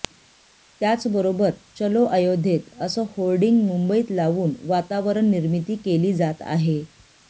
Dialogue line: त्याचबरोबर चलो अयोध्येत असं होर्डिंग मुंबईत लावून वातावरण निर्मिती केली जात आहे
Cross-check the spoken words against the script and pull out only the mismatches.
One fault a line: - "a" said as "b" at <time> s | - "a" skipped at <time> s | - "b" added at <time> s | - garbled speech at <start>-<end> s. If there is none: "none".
none